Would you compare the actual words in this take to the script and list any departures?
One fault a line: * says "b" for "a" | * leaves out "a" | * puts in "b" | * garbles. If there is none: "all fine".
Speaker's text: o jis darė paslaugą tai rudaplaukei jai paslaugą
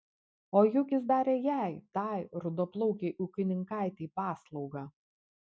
* puts in "juk"
* says "jai" for "paslaugą"
* says "ūkininkaitei" for "jai"